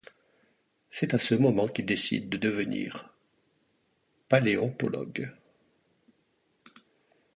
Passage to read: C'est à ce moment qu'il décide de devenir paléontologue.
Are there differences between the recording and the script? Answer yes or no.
no